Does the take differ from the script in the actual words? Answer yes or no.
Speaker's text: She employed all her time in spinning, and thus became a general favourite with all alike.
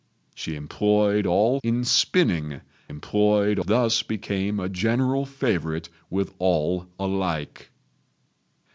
yes